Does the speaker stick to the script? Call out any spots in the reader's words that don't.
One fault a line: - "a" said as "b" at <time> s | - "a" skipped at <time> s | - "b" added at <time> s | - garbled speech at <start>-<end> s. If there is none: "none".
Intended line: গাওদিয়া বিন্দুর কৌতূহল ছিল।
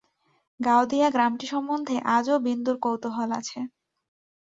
- "গ্রামটি সম্বন্ধে আজও" added at 1.1 s
- "ছিল" said as "আছে" at 3.4 s